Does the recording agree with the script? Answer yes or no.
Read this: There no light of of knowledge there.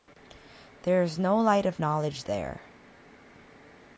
no